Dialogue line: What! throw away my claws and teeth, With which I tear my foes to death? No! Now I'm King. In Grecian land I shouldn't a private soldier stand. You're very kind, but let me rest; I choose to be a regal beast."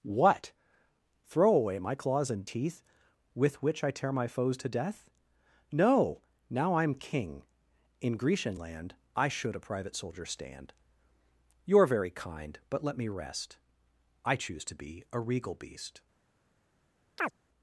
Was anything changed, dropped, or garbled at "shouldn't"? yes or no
yes